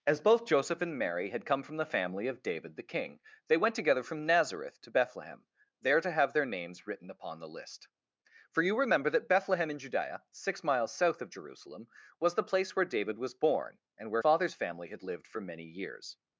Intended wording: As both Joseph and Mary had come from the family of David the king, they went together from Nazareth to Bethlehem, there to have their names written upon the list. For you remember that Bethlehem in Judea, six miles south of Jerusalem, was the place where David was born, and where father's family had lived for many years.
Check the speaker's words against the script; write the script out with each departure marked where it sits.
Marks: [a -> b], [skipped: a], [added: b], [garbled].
As both Joseph and Mary had come from the family of David the king, they went together from Nazareth to Bethlehem, there to have their names written upon the list. For you remember that Bethlehem in Judea, six miles south of Jerusalem, was the place where David was born, and where father's family had lived for many years.